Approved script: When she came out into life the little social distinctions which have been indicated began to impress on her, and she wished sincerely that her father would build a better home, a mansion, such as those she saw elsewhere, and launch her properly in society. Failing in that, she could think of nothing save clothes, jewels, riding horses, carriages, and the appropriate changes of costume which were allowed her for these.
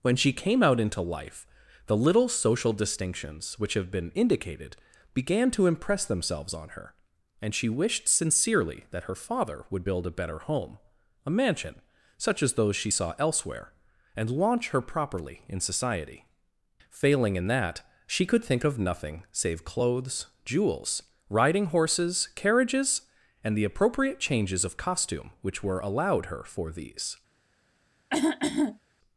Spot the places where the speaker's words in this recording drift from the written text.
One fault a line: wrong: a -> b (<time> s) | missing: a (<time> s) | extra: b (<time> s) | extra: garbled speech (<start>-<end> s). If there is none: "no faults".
extra: themselves (6.0 s)